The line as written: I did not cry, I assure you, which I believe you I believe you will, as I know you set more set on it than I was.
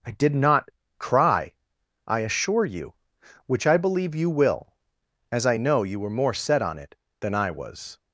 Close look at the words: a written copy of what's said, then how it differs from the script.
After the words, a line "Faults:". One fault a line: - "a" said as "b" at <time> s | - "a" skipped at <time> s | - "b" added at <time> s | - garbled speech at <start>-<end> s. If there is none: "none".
I did not cry, I assure you, which I believe you will, as I know you were more set on it than I was.
Faults:
- "I believe you" skipped at 4.3 s
- "set" said as "were" at 6.0 s